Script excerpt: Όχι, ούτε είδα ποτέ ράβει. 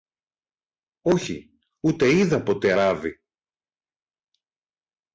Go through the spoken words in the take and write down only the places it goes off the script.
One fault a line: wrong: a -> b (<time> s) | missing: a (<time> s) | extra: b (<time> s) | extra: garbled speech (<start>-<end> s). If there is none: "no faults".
no faults